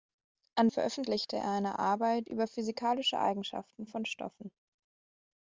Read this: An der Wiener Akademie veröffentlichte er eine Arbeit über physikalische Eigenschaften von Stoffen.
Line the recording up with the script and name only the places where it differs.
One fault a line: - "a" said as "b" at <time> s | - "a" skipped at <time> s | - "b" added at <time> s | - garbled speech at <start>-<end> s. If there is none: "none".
- "der Wiener Akademie" skipped at 0.7 s